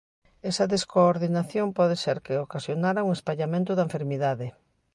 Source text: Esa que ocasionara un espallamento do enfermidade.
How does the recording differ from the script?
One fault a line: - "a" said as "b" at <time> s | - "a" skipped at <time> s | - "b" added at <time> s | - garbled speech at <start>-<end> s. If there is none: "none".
- "descoordinación pode ser" added at 0.7 s
- "do" said as "da" at 3.8 s